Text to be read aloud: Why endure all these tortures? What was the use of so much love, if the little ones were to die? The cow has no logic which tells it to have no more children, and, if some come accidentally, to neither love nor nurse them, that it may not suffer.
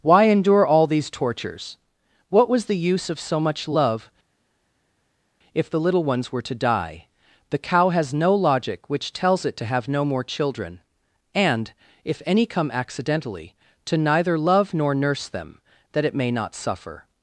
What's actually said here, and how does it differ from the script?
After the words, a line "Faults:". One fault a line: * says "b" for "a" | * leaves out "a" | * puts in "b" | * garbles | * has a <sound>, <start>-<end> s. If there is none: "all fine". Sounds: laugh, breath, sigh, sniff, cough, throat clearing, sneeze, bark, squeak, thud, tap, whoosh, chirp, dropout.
Why endure all these tortures? What was the use of so much love, if the little ones were to die? The cow has no logic which tells it to have no more children, and, if any come accidentally, to neither love nor nurse them, that it may not suffer.
Faults:
* says "any" for "some"